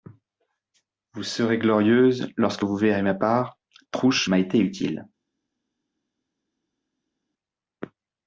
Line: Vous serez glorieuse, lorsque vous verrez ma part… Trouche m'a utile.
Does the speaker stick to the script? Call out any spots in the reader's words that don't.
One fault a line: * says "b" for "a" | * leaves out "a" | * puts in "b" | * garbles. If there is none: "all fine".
* puts in "été"